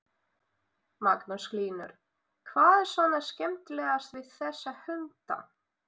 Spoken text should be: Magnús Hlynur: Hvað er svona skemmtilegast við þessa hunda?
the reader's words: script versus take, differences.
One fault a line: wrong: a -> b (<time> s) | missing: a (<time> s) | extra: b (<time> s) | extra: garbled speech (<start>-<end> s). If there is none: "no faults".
no faults